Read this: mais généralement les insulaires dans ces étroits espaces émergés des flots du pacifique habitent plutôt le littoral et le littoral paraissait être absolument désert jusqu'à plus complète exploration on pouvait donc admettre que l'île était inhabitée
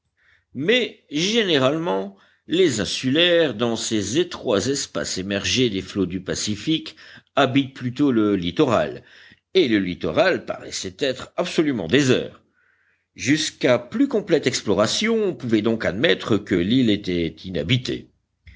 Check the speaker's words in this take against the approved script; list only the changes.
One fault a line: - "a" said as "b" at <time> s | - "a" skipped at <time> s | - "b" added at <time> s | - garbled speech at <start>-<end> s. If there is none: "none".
none